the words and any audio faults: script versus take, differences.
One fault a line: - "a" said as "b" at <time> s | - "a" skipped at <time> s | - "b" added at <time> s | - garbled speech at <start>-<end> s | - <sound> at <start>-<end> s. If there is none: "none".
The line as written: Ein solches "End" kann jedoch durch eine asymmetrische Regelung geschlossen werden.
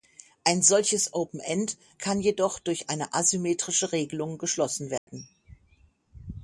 - "Open" added at 1.1 s
- dropout at 5.0-5.1 s